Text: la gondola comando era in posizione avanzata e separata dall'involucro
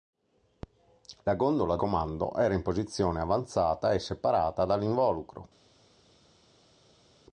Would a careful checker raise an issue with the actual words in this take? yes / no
no